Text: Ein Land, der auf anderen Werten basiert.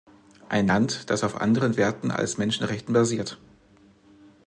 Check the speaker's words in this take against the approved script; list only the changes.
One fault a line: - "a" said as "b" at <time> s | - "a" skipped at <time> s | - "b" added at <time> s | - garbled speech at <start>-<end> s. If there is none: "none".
- "der" said as "das" at 1.1 s
- "als Menschenrechten" added at 2.1 s